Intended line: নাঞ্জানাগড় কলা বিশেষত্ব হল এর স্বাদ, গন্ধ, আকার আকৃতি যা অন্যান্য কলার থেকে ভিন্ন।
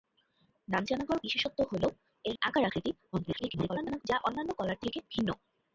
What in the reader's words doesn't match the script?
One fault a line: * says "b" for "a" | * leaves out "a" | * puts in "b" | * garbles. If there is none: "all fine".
* leaves out "কলা"
* leaves out "স্বাদ গন্ধ"
* garbles